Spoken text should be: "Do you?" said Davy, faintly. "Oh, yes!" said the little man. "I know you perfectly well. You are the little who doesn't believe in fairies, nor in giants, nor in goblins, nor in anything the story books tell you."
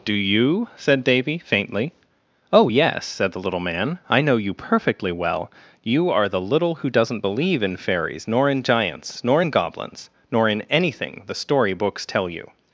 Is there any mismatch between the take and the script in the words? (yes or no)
no